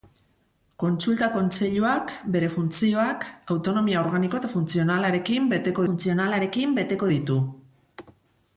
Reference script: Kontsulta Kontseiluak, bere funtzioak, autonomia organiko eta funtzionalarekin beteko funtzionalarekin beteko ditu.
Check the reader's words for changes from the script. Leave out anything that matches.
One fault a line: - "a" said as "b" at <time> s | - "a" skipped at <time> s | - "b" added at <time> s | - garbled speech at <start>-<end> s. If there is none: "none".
none